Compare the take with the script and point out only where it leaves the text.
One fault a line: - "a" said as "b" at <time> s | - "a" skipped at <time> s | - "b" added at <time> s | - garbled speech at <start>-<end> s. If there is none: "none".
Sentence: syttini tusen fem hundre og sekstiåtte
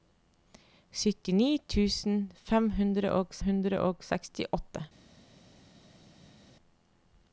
- "hundre og" added at 3.5 s